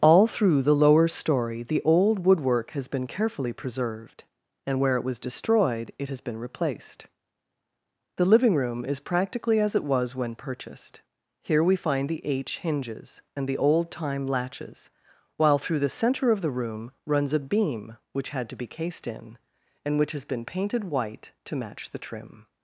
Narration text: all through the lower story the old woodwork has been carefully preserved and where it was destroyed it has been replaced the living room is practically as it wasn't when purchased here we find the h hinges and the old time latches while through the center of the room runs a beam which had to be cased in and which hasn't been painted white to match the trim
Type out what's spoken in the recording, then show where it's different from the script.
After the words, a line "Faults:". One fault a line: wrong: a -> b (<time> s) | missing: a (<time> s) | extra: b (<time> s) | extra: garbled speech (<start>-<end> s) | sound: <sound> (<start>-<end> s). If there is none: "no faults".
all through the lower story the old woodwork has been carefully preserved and where it was destroyed it has been replaced the living room is practically as it was when purchased here we find the h hinges and the old time latches while through the center of the room runs a beam which had to be cased in and which has been painted white to match the trim
Faults:
wrong: wasn't -> was (9.8 s)
wrong: hasn't -> has (20.1 s)